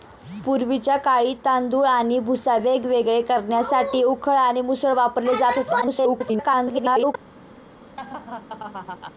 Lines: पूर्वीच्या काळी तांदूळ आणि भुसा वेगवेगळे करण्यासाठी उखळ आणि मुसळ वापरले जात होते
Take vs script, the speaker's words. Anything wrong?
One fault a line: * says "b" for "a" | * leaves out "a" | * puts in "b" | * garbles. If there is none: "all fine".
* garbles